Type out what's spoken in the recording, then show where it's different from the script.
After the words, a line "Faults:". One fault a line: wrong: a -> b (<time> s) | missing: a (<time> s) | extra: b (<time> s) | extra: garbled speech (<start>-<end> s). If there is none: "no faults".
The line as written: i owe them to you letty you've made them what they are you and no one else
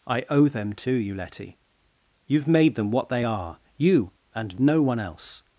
i owe them to you letty you've made them what they are you and no one else
Faults:
no faults